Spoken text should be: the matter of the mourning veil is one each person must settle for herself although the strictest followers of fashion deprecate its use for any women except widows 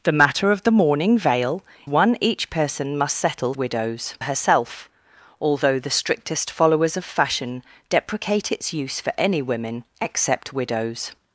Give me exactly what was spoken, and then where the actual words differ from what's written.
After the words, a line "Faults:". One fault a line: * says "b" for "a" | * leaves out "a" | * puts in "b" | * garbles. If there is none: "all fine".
the matter of the mourning veil one each person must settle widows herself although the strictest followers of fashion deprecate its use for any women except widows
Faults:
* leaves out "is"
* says "widows" for "for"